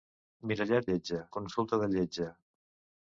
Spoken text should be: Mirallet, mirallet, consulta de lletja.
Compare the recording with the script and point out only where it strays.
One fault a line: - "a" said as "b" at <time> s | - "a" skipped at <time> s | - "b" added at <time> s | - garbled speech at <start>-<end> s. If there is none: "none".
- "mirallet" said as "lletja" at 0.9 s